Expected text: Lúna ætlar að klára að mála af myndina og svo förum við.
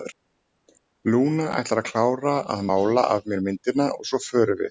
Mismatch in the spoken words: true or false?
true